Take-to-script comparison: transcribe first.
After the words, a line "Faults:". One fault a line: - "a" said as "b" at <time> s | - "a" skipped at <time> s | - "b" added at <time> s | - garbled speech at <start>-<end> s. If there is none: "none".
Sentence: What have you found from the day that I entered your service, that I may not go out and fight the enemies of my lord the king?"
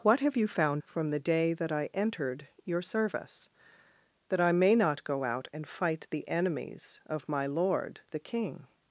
What have you found from the day that I entered your service, that I may not go out and fight the enemies of my lord the king?"
Faults:
none